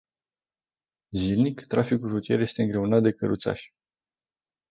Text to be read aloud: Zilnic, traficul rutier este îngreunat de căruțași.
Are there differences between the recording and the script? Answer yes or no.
no